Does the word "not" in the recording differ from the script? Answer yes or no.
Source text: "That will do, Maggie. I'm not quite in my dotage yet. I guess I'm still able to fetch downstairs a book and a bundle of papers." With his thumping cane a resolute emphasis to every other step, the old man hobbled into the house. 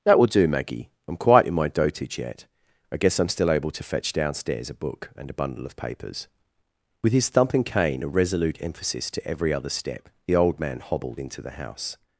yes